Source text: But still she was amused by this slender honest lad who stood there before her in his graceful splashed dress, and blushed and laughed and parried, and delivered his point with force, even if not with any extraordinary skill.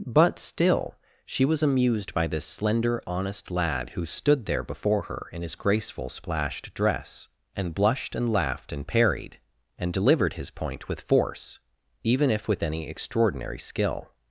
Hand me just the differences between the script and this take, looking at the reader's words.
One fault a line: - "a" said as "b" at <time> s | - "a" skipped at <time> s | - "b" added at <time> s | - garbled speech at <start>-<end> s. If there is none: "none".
- "not" skipped at 12.5 s